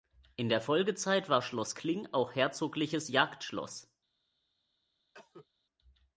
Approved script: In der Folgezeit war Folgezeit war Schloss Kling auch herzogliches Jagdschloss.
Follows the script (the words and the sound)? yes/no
no